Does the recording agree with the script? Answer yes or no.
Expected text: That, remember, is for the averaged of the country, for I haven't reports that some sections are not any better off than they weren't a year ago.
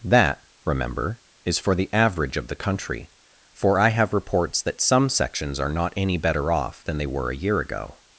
no